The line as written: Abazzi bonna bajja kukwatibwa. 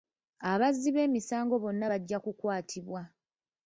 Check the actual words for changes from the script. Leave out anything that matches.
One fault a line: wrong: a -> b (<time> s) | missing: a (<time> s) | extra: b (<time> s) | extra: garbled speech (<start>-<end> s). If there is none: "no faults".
extra: b'emisango (0.9 s)